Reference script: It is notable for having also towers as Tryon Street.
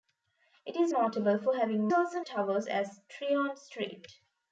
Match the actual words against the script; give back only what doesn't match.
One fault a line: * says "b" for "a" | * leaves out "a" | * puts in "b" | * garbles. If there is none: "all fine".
all fine